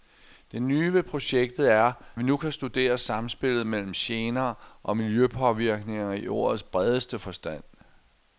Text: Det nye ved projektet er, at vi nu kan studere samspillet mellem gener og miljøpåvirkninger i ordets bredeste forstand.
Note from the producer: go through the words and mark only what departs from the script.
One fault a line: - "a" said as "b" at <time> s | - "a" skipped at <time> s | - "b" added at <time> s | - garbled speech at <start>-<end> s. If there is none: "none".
- "at" skipped at 1.9 s